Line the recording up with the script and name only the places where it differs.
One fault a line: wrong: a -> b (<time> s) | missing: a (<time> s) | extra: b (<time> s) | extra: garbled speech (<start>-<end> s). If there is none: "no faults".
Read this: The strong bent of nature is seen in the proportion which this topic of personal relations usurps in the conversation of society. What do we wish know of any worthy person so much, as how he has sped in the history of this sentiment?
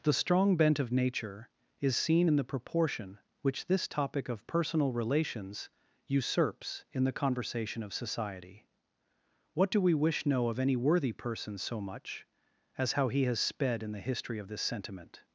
no faults